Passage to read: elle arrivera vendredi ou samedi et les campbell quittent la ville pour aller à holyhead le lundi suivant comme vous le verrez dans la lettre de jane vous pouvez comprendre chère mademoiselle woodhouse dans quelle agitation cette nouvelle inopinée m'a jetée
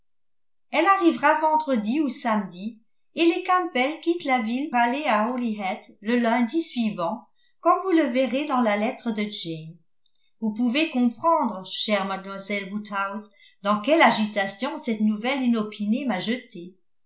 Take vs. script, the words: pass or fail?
fail